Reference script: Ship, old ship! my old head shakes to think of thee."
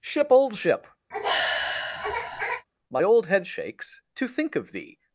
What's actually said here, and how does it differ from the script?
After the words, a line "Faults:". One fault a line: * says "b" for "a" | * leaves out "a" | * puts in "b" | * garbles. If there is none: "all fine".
Ship, old ship! my old head shakes to think of thee."
Faults:
all fine